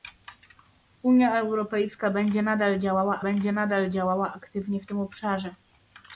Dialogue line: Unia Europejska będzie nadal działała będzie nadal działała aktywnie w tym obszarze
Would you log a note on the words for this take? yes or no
no